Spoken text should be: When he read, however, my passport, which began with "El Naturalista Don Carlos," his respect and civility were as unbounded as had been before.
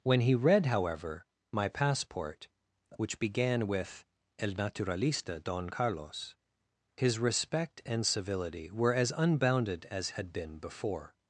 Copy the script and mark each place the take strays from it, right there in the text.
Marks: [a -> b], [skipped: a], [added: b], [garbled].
When he read, however, my passport, which began with "El Naturalista Don Carlos," his respect and civility were as unbounded as had been before.